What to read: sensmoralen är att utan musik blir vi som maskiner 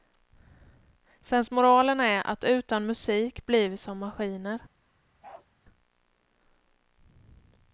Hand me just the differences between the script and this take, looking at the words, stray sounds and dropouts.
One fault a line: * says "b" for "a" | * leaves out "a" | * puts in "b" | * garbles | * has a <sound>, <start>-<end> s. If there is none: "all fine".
* has a bark, 5.2-5.5 s